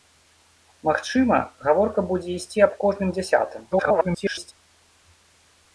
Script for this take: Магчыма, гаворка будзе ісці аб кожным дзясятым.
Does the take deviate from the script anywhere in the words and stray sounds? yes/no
yes